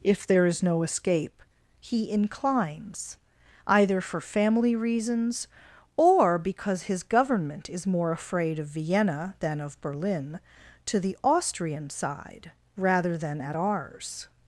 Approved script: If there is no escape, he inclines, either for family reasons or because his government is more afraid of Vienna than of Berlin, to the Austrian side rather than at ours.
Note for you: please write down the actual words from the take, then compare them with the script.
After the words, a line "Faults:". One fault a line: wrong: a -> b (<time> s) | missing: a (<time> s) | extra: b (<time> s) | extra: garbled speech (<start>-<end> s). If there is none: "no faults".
If there is no escape, he inclines, either for family reasons or because his government is more afraid of Vienna than of Berlin, to the Austrian side rather than at ours.
Faults:
no faults